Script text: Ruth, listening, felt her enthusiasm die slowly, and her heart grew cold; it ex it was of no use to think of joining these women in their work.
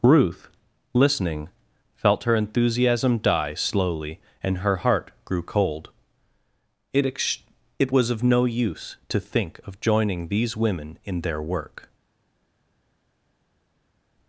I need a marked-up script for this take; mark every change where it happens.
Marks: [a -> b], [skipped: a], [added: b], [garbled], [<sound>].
Ruth, listening, felt her enthusiasm die slowly, and her heart grew cold; it ex it was of no use to think of joining these women in their work.